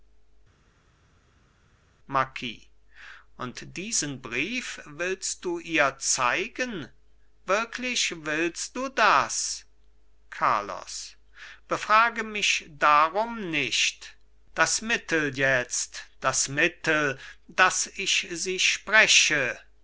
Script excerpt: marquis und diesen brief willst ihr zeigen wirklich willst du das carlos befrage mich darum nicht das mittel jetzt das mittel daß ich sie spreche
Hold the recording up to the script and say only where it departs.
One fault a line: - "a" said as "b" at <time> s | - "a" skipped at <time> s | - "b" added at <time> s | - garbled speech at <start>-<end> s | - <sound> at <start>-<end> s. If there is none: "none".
- "du" added at 5.4 s